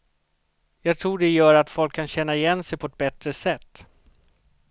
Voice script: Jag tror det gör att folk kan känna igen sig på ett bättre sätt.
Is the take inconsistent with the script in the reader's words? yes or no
no